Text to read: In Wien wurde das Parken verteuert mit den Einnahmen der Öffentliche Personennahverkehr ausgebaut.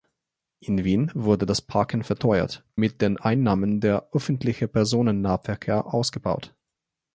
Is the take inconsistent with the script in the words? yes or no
no